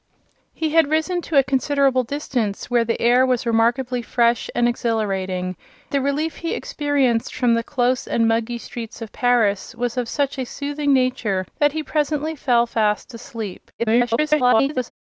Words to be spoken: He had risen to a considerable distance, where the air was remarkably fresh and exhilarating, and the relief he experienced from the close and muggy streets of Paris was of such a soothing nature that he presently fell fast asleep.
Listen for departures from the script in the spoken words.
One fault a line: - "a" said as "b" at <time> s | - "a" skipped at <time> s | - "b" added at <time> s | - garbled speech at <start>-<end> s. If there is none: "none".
- "and" skipped at 5.5 s
- garbled speech at 13.8-14.9 s